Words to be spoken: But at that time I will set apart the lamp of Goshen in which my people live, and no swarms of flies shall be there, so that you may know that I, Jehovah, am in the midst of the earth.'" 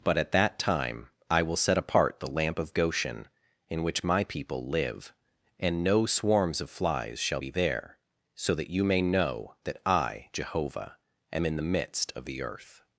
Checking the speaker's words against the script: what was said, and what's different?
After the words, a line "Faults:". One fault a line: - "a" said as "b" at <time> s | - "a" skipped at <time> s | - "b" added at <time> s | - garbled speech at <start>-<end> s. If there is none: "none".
But at that time I will set apart the lamp of Goshen in which my people live, and no swarms of flies shall be there, so that you may know that I, Jehovah, am in the midst of the earth.'"
Faults:
none